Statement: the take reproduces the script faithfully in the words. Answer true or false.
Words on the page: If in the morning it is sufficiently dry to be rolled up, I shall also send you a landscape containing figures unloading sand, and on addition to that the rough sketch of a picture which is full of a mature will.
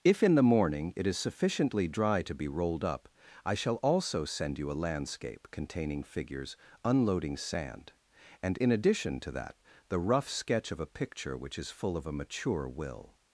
false